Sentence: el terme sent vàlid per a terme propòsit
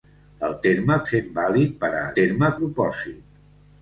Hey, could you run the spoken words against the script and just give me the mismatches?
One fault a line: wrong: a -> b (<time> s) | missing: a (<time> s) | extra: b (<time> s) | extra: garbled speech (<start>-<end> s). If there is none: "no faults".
no faults